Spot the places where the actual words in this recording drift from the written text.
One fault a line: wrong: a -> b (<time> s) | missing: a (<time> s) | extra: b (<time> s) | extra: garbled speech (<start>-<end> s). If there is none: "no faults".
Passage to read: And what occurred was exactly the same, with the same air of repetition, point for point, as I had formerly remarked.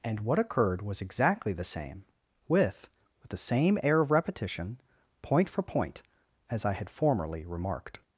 extra: with (3.2 s)